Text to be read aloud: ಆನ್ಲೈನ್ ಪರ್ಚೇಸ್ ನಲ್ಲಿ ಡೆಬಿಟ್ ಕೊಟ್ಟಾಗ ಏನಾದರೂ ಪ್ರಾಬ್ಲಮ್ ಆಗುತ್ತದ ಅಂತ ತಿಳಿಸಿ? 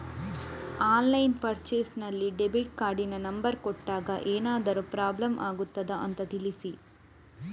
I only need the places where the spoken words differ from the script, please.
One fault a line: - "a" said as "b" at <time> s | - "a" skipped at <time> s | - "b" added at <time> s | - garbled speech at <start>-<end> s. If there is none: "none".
- "ಕಾರ್ಡಿನ ನಂಬರ್" added at 2.8 s